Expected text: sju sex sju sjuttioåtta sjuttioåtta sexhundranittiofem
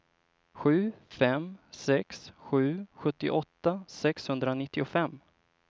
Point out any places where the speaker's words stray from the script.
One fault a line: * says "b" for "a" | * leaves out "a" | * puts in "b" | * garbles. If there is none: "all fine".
* puts in "fem"
* leaves out "sjuttioåtta"